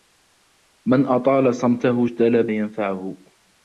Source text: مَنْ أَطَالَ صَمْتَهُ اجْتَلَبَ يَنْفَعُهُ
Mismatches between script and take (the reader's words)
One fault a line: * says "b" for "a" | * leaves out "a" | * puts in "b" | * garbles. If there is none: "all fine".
all fine